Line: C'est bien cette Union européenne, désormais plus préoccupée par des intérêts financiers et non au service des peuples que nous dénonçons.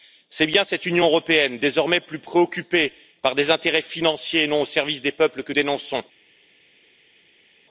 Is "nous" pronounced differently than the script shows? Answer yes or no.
yes